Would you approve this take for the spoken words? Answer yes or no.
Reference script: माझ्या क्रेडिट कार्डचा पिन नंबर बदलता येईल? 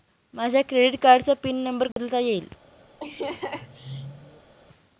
yes